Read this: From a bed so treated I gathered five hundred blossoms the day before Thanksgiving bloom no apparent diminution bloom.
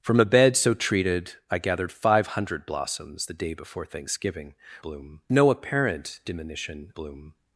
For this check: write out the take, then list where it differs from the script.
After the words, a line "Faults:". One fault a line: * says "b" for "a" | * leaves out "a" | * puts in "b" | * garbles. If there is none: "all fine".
From a bed so treated I gathered five hundred blossoms the day before Thanksgiving bloom no apparent diminution bloom.
Faults:
all fine